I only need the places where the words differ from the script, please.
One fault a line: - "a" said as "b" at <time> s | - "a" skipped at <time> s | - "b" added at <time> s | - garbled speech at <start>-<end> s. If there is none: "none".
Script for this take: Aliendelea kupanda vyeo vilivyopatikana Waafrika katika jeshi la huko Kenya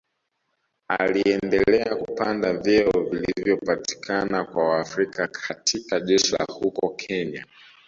- "kwa" added at 4.4 s